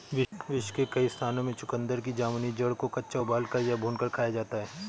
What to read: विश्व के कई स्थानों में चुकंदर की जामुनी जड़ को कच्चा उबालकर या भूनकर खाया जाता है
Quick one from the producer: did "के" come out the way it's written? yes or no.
yes